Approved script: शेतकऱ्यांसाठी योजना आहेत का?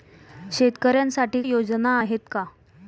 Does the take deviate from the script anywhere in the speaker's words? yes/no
no